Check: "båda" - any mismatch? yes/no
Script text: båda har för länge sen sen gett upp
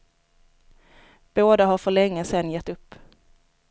no